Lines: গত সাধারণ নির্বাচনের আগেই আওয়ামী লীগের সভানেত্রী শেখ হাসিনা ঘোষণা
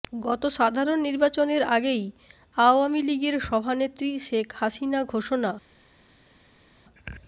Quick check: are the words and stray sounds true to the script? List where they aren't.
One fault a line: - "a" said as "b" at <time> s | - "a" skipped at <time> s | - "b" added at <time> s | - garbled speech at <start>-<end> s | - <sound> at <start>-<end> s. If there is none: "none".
none